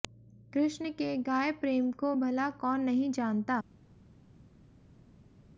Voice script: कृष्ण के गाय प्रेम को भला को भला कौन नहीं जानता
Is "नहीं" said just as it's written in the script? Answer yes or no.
yes